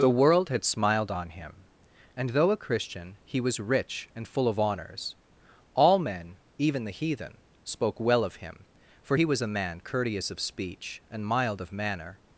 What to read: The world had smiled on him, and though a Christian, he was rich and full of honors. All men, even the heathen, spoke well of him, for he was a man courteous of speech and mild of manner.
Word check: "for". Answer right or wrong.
right